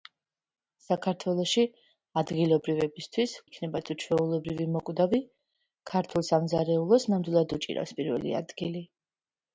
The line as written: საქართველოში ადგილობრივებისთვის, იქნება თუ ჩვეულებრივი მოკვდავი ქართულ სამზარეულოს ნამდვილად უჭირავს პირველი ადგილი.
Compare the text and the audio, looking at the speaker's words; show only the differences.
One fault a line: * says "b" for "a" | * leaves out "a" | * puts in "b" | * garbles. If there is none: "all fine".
all fine